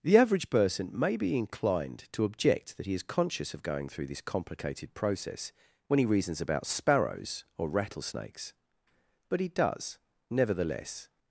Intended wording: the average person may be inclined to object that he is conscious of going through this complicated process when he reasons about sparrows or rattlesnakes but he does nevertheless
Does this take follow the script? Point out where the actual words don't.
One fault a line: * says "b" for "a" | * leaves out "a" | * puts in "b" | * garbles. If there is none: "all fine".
all fine